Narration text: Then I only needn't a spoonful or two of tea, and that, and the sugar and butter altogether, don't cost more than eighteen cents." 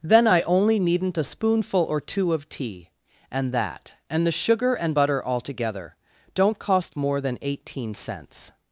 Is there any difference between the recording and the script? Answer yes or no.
no